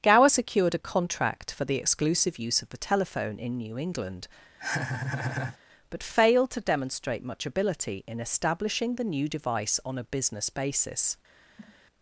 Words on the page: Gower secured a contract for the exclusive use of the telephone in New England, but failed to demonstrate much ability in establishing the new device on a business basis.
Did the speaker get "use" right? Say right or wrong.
right